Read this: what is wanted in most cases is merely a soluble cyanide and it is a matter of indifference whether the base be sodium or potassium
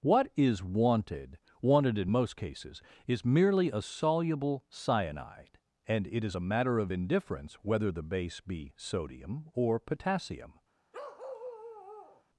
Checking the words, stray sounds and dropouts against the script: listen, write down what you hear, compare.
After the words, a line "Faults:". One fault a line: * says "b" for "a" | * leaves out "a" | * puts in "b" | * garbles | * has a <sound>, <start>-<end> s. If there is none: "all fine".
what is wanted wanted in most cases is merely a soluble cyanide and it is a matter of indifference whether the base be sodium or potassium
Faults:
* puts in "wanted"
* has a bark, 10.9-12.2 s